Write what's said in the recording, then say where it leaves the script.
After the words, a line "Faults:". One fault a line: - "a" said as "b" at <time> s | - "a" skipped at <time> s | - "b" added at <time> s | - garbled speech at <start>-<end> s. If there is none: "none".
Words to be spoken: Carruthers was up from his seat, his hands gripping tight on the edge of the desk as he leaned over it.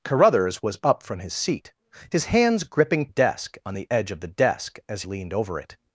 Carruthers was up from his seat, his hands gripping desk on the edge of the desk as leaned over it.
Faults:
- "tight" said as "desk" at 3.1 s
- "he" skipped at 5.0 s